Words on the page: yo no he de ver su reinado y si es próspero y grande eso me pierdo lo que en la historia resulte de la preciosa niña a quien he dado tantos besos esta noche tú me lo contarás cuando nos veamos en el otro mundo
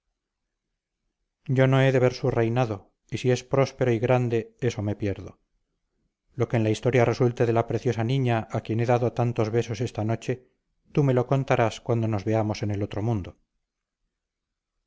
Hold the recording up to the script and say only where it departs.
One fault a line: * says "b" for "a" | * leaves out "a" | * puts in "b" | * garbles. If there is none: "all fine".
all fine